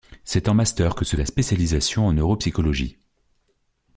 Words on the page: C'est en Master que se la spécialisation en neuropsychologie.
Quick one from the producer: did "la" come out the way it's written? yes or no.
yes